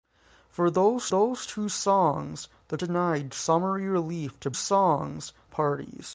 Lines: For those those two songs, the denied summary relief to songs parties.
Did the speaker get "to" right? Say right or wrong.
right